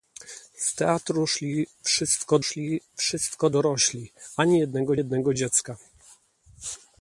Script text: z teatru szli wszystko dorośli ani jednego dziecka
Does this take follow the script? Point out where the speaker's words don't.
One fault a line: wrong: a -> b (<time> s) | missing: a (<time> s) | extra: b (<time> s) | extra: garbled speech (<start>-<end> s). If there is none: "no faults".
extra: szli wszystko (2.4 s)
extra: jednego (5.0 s)